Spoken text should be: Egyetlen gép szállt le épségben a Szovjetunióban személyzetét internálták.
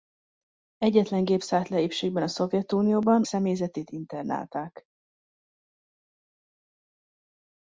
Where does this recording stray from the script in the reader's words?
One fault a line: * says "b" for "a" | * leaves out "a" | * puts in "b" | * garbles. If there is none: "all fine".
all fine